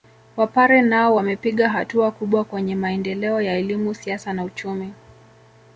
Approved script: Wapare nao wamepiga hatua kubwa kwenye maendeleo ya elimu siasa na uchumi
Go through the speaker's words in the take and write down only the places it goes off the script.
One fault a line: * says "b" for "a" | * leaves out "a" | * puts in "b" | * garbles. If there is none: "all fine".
all fine